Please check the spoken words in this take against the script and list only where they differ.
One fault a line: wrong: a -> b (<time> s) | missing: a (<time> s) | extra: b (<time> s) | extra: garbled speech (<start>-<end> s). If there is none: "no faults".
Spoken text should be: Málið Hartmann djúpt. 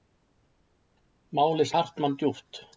no faults